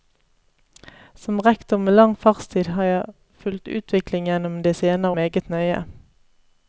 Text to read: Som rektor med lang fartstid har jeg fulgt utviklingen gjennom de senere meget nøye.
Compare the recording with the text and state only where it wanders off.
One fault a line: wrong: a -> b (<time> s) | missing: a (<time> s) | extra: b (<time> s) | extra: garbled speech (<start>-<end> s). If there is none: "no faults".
no faults